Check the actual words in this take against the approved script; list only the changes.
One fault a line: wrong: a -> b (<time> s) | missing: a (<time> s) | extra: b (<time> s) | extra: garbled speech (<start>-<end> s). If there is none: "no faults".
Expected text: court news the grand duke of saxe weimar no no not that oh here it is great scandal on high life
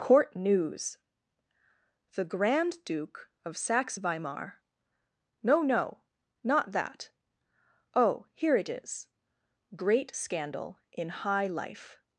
wrong: on -> in (10.9 s)